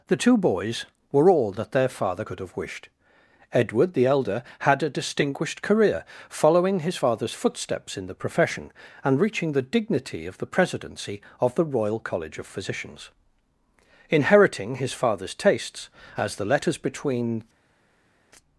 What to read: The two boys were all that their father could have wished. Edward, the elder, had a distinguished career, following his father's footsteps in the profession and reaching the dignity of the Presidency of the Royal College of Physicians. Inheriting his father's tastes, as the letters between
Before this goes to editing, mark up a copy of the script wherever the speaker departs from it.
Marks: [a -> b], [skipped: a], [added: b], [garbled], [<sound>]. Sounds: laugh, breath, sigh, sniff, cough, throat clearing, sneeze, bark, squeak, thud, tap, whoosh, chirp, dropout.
The two boys were all that their father could have wished. Edward, the elder, had a distinguished career, following his father's footsteps in the profession and reaching the dignity of the Presidency of the Royal College of Physicians. Inheriting his father's tastes, as the letters between